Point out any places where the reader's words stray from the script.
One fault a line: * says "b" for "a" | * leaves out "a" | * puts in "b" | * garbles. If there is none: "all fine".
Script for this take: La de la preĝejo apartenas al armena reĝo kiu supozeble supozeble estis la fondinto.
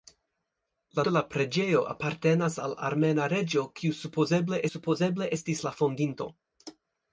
all fine